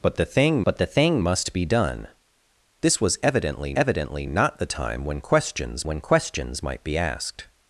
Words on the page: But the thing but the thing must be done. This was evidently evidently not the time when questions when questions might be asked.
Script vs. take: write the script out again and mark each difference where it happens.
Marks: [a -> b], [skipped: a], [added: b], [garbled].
But the thing but the thing must be done. This was evidently evidently not the time when questions when questions might be asked.